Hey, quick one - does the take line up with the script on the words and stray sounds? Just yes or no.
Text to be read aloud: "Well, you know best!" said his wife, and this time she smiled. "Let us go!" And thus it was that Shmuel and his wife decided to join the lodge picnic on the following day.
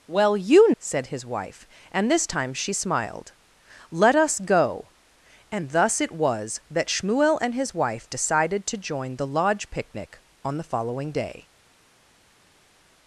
no